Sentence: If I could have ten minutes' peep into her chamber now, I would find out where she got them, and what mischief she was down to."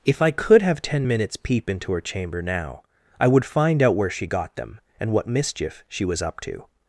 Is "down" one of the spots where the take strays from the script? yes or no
yes